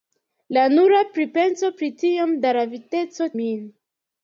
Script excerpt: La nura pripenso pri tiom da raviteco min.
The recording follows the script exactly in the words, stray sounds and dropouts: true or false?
true